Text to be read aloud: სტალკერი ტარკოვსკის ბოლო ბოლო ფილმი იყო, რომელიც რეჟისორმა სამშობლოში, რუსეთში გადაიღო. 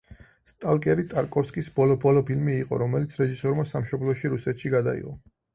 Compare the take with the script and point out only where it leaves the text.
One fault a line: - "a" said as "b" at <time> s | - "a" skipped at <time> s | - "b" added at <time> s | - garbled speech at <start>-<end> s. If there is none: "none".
none